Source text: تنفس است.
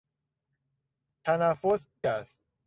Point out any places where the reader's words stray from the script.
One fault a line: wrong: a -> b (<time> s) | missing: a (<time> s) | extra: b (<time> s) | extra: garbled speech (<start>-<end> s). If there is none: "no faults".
no faults